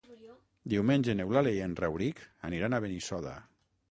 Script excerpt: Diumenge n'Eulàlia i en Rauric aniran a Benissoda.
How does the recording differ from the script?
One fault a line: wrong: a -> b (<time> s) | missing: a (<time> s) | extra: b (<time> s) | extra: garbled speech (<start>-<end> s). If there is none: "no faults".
no faults